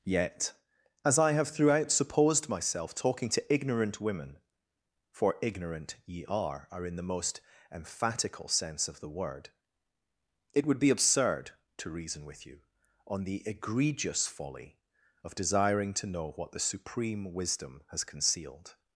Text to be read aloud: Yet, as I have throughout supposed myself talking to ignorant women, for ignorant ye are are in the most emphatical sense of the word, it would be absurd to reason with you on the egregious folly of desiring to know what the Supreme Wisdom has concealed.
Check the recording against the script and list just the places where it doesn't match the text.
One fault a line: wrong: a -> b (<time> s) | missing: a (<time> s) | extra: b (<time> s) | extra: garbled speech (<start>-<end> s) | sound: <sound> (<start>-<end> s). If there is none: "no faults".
no faults